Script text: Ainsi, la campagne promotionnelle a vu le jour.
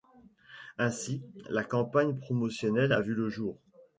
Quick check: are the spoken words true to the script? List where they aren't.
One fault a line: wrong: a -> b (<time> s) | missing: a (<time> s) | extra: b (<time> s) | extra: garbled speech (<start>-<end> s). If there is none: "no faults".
no faults